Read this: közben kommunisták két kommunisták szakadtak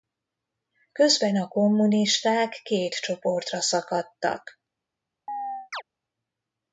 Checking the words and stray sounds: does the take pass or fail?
fail